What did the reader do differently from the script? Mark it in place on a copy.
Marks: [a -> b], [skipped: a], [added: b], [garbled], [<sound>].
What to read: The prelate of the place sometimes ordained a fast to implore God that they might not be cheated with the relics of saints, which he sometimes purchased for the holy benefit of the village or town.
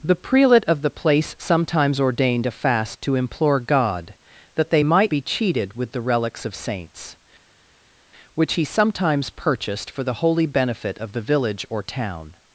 The prelate of the place sometimes ordained a fast to implore God that they might [skipped: not] be cheated with the relics of saints, which he sometimes purchased for the holy benefit of the village or town.